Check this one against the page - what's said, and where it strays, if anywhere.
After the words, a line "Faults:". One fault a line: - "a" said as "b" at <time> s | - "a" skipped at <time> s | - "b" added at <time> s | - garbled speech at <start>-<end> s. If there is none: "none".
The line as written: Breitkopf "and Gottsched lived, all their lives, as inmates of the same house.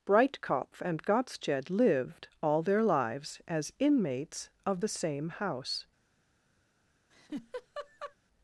Breitkopf "and Gottsched lived, all their lives, as inmates of the same house.
Faults:
none